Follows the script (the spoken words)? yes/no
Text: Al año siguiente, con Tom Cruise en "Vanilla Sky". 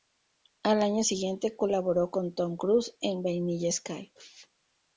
no